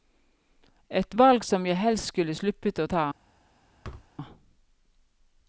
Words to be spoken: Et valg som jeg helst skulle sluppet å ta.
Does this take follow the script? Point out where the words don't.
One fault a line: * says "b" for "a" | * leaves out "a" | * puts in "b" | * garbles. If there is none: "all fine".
all fine